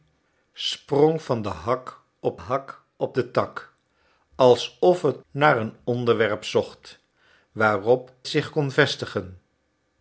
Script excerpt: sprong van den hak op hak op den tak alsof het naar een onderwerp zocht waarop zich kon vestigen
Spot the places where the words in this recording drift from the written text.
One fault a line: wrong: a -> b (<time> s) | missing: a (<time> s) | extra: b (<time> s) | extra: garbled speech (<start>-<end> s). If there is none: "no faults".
no faults